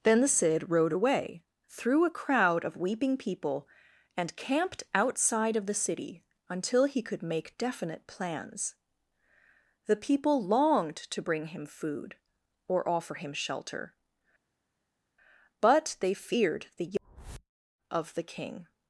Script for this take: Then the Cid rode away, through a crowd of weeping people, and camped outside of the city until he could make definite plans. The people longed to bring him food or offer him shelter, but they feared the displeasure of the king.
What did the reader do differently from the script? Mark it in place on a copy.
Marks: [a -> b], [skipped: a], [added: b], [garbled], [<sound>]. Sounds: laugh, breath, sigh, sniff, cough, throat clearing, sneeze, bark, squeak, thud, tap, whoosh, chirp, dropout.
Then the Cid rode away, through a crowd of weeping people, and camped outside of the city until he could make definite plans. The people longed to bring him food or offer him shelter, but they feared the [skipped: displeasure] of the king.